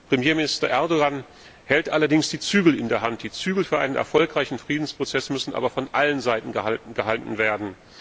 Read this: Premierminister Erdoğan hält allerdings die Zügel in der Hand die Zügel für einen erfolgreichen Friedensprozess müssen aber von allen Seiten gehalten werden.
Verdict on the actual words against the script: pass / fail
pass